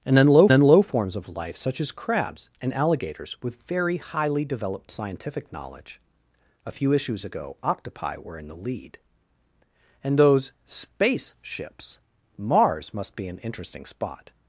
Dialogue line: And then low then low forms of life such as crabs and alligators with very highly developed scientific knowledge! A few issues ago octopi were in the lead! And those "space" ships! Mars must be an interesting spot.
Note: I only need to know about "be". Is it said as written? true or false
true